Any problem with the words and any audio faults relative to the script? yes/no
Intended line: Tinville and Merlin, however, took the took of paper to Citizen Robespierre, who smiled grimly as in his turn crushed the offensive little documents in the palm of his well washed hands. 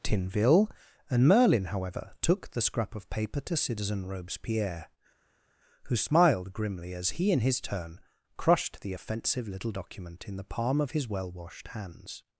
yes